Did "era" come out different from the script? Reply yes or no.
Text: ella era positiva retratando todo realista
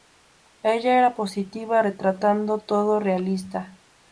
no